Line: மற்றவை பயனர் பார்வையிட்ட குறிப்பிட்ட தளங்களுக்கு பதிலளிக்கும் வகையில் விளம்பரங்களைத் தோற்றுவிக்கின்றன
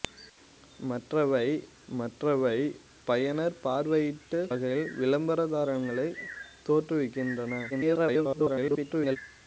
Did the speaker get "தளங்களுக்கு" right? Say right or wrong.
wrong